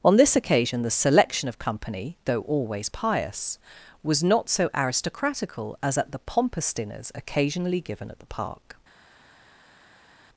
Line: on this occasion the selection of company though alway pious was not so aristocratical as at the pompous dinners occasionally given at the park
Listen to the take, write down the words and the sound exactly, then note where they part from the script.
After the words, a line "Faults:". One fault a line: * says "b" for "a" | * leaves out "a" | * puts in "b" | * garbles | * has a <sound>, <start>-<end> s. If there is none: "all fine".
on this occasion the selection of company though always pious was not so aristocratical as at the pompous dinners occasionally given at the park
Faults:
* says "always" for "alway"